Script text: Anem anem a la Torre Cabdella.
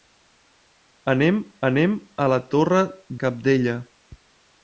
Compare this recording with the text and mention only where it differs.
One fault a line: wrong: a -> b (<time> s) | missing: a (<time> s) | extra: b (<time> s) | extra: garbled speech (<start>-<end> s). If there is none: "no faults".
no faults